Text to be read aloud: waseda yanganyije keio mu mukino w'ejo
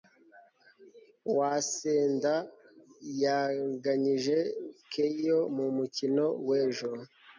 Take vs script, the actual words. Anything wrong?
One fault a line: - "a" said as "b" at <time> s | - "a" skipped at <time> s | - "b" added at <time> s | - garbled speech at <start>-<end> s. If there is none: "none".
none